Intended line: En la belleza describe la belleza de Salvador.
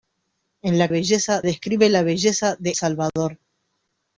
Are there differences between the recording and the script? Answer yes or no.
no